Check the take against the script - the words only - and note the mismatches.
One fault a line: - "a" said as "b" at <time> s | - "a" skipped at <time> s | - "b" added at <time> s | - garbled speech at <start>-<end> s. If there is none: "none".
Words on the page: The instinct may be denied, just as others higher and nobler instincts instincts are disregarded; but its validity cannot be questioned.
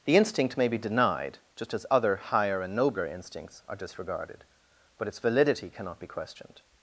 - "others" said as "other" at 1.9 s
- "instincts" skipped at 3.6 s